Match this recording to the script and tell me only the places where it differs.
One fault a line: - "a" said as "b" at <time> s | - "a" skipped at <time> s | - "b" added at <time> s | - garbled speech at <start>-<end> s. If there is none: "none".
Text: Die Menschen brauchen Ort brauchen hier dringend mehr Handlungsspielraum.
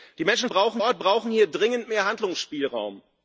none